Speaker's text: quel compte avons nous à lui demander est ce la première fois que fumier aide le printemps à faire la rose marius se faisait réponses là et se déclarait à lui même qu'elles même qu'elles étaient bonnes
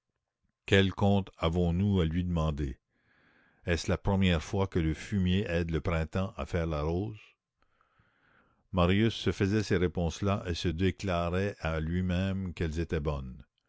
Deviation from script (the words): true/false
true